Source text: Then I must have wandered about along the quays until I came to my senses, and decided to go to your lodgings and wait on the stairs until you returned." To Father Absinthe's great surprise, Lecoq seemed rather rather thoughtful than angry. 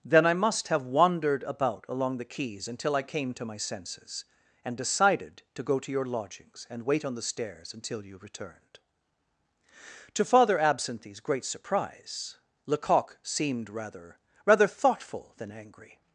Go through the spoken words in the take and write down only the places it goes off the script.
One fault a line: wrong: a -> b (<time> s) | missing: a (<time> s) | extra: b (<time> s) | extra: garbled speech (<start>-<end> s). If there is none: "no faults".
no faults